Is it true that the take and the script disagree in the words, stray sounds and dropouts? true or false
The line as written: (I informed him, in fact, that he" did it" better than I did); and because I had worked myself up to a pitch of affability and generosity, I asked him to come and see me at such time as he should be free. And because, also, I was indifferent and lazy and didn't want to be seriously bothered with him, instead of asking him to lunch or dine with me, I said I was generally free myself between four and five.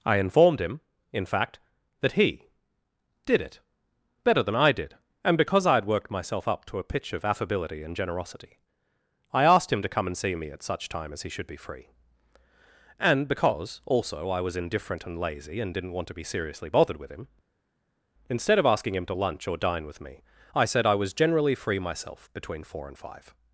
false